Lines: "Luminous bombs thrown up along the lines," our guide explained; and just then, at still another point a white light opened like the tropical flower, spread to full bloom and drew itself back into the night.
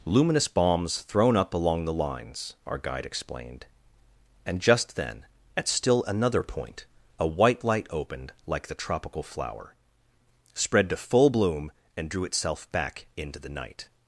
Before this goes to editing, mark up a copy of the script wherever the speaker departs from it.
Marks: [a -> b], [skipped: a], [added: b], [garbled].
"Luminous bombs thrown up along the lines," our guide explained; and just then, at still another point a white light opened like the tropical flower, spread to full bloom and drew itself back into the night.